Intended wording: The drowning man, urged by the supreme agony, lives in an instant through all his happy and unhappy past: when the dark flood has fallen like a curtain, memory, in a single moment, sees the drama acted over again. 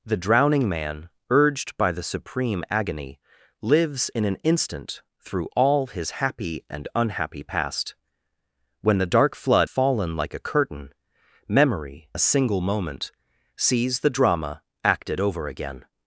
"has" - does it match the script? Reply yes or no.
no